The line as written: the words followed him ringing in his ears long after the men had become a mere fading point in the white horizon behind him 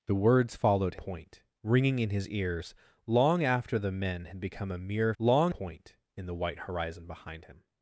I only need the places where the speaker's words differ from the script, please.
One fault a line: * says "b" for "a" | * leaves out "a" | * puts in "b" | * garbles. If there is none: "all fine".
* says "point" for "him"
* says "long" for "fading"